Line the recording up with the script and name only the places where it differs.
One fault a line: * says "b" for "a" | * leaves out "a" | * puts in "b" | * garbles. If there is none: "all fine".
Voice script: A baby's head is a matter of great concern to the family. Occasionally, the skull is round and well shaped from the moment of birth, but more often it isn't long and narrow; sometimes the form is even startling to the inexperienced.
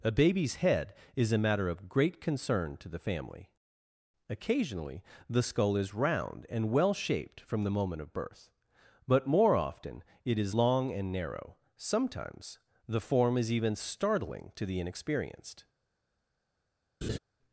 * says "is" for "isn't"